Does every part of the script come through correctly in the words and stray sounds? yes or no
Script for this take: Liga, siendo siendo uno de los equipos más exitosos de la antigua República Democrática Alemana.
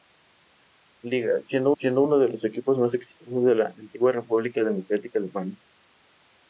yes